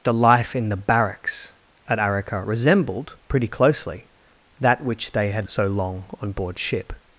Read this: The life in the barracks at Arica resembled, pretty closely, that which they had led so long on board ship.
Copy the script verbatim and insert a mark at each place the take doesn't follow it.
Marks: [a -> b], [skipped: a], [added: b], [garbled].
The life in the barracks at Arica resembled, pretty closely, that which they had [skipped: led] so long on board ship.